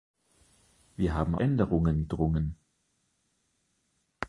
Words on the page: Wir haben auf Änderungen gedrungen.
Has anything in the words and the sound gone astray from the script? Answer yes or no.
yes